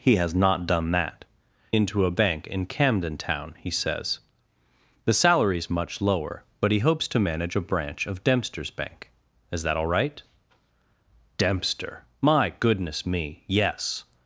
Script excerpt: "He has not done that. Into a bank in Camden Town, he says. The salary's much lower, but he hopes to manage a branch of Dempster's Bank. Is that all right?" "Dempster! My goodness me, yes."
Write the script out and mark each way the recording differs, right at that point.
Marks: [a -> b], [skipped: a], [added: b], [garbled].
"He has not done that. Into a bank in Camden Town, he says. The salary's much lower, but he hopes to manage a branch of Dempster's Bank. Is that all right?" "Dempster! My goodness me, yes."